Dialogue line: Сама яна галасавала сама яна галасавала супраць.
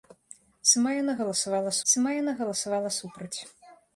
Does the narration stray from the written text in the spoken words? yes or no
no